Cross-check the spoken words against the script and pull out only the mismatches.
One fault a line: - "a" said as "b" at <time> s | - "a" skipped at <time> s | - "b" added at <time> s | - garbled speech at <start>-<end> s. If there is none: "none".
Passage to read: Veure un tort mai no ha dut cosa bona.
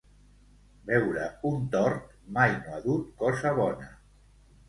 none